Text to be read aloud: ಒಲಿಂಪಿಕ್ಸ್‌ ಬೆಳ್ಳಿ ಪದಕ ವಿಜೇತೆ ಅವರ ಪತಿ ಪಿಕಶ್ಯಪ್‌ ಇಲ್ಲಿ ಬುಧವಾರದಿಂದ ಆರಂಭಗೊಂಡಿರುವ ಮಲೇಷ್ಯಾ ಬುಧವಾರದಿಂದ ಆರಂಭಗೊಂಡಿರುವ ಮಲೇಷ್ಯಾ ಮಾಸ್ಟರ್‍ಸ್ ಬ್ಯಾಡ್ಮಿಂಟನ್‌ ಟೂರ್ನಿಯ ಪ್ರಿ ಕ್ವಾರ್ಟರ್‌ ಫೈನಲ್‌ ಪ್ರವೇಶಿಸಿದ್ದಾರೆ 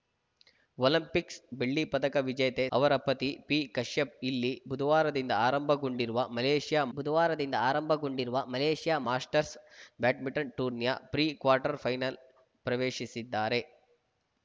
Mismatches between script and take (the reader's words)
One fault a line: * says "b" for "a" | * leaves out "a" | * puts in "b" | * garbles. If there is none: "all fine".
all fine